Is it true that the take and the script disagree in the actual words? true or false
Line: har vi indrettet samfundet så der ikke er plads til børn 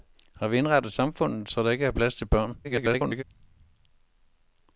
true